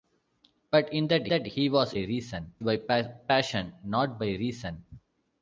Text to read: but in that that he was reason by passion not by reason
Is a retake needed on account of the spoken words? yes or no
no